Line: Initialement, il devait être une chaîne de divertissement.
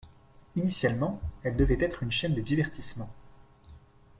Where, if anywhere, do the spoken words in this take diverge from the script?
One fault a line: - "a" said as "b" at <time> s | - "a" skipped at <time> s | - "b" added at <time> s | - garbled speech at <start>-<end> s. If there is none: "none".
- "il" said as "elle" at 1.4 s